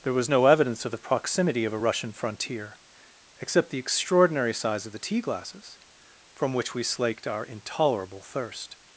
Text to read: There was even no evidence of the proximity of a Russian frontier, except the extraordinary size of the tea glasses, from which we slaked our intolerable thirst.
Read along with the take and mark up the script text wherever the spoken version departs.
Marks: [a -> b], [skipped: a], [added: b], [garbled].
There was [skipped: even] no evidence of the proximity of a Russian frontier, except the extraordinary size of the tea glasses, from which we slaked our intolerable thirst.